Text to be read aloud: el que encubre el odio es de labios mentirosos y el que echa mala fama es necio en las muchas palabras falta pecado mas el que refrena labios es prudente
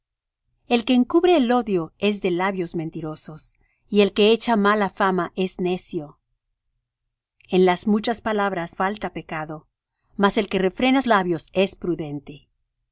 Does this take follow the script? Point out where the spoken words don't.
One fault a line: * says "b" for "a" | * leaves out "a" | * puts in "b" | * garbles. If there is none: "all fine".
all fine